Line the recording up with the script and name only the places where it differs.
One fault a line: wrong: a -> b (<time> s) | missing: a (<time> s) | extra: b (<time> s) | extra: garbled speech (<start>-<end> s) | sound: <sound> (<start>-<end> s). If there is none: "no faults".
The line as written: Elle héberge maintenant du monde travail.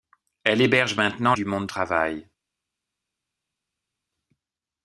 no faults